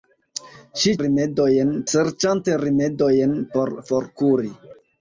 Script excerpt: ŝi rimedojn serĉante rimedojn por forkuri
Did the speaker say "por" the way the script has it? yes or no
yes